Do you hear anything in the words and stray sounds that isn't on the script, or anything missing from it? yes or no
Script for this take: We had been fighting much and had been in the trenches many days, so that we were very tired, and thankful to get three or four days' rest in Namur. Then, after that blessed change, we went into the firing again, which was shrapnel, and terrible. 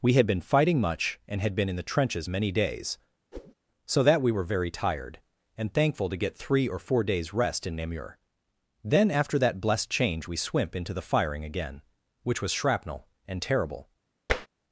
yes